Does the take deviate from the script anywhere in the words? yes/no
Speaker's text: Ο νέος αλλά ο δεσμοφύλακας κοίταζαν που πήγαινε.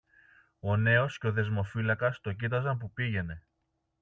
yes